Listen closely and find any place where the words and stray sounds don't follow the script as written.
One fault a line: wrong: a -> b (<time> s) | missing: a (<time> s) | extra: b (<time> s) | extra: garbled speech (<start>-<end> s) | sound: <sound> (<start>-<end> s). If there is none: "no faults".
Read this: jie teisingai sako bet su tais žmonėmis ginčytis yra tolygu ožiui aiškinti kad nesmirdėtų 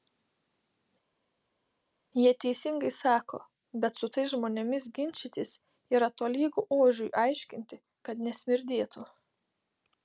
no faults